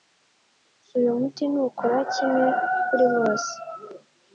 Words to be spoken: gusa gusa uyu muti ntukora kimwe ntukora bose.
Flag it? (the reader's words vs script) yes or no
yes